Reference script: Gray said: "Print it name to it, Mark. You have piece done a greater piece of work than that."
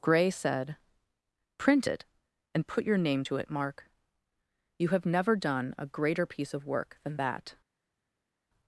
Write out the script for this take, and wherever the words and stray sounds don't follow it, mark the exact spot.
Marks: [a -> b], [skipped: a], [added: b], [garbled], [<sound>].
Gray said: "Print it [added: and put your] name to it, Mark. You have [piece -> never] done a greater piece of work than that."